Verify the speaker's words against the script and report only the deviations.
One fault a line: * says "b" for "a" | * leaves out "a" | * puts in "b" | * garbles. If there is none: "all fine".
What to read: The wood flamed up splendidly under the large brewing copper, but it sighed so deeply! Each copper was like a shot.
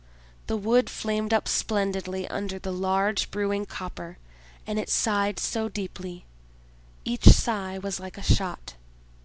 * says "and" for "but"
* says "sigh" for "copper"